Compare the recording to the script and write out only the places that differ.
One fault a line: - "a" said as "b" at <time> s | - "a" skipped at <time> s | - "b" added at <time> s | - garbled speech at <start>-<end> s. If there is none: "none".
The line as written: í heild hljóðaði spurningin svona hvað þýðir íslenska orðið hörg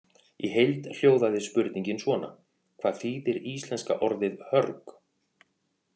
none